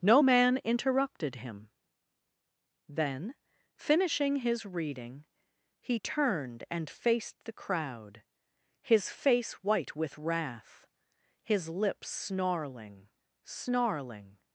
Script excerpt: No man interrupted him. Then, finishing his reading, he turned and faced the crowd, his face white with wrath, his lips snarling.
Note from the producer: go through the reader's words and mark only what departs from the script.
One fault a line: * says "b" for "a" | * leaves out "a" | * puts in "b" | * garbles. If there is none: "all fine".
* puts in "snarling"